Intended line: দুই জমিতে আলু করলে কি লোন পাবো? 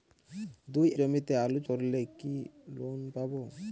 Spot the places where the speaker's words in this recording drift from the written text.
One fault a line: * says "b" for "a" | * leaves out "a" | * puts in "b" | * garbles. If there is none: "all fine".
all fine